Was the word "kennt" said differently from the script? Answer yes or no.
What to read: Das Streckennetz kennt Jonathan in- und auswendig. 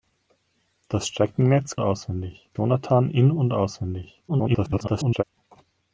yes